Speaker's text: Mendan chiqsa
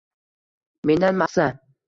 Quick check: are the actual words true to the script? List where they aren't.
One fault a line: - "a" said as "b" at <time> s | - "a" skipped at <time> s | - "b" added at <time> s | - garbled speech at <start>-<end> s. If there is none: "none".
none